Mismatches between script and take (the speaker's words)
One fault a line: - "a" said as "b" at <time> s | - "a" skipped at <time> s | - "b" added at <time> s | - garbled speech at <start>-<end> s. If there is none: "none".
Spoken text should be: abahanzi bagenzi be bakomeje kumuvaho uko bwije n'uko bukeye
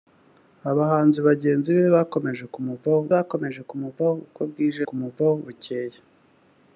- "bakomeje kumuvaho" added at 3.1 s
- "n'uko" said as "kumuvaho" at 4.9 s